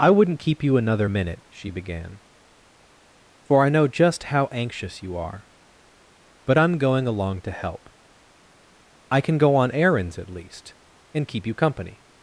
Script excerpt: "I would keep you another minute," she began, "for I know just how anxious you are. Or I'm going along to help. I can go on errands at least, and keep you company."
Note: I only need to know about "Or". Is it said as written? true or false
false